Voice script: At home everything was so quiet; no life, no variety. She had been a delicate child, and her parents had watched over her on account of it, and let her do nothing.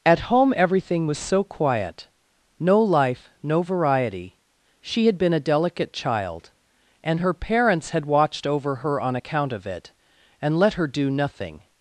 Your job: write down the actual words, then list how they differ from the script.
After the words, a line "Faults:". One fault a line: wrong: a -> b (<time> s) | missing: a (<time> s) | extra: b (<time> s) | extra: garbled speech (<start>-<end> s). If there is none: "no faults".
At home everything was so quiet; no life, no variety. She had been a delicate child, and her parents had watched over her on account of it, and let her do nothing.
Faults:
no faults